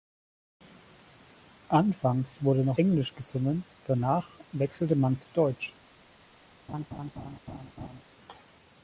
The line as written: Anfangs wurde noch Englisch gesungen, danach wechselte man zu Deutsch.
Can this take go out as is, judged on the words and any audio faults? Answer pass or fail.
fail